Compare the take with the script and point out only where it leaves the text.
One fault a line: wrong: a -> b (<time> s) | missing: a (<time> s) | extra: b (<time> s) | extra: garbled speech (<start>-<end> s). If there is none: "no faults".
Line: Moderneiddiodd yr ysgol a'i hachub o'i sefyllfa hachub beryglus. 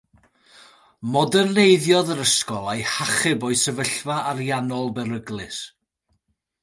wrong: hachub -> ariannol (4.3 s)